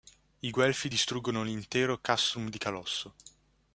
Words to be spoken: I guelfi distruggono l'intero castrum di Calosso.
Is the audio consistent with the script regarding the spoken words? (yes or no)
yes